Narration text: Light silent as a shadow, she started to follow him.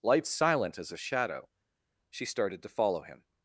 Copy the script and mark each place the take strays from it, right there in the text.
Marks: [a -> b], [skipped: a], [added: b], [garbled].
Light silent as a shadow, she started to follow him.